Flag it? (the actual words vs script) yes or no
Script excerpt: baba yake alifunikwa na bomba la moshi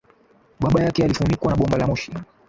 no